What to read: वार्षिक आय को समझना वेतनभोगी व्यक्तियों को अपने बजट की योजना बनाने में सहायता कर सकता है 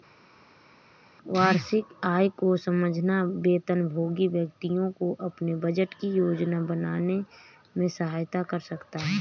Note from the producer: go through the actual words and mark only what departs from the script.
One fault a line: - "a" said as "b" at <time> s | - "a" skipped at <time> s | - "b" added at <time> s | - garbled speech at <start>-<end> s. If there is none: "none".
none